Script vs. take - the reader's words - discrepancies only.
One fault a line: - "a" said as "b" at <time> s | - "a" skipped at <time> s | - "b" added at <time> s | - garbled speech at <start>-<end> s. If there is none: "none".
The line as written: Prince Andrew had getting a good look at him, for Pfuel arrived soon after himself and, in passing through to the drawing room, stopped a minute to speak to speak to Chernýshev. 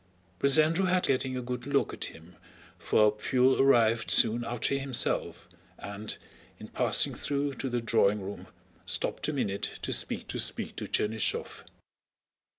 none